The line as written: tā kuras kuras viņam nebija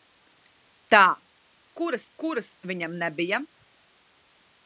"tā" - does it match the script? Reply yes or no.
yes